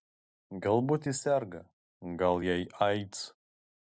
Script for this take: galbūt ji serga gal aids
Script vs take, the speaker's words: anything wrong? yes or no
yes